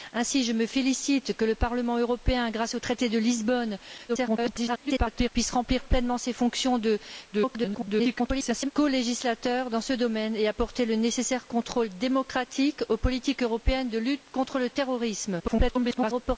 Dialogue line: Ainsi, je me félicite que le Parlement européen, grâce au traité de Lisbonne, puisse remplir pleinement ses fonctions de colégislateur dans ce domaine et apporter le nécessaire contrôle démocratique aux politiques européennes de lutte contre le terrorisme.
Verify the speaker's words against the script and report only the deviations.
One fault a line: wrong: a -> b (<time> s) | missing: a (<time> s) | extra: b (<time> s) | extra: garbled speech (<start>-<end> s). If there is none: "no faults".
extra: garbled speech (4.1-5.3 s)
extra: garbled speech (7.3-8.7 s)
extra: garbled speech (15.4-16.4 s)